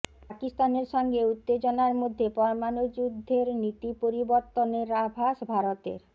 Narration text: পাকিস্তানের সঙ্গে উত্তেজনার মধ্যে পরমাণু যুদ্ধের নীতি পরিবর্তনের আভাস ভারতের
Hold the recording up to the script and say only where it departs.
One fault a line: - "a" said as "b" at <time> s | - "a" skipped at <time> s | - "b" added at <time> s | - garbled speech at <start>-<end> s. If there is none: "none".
none